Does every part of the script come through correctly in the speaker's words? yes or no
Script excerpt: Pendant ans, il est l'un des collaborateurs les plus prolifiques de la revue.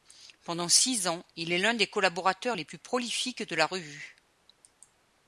no